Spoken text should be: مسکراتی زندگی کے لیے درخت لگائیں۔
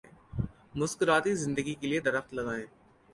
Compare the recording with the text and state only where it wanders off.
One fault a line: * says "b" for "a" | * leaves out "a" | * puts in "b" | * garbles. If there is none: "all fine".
all fine